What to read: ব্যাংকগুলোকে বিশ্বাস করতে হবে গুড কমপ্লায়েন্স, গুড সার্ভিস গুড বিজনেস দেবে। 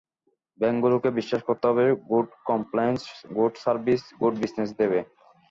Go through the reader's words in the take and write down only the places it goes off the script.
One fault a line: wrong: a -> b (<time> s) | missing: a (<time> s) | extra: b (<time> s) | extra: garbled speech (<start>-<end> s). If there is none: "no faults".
no faults